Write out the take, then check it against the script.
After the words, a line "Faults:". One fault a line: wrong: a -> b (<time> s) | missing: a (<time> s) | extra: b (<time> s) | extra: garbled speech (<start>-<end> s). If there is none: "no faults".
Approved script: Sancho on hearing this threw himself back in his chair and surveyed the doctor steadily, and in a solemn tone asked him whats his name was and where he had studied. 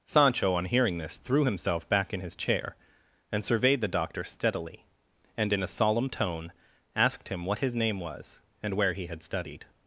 Sancho on hearing this threw himself back in his chair and surveyed the doctor steadily, and in a solemn tone asked him what his name was and where he had studied.
Faults:
wrong: whats -> what (7.5 s)